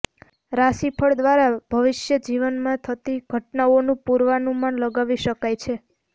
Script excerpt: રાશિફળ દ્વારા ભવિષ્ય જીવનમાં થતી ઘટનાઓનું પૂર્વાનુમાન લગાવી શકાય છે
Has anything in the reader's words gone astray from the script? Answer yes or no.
no